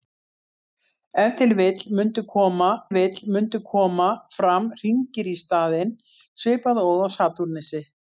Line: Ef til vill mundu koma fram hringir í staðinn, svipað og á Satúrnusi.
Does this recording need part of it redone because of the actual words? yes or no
yes